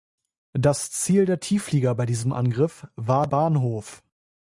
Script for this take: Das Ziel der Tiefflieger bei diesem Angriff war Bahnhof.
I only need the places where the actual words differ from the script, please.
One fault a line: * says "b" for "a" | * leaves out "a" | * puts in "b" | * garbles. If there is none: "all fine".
all fine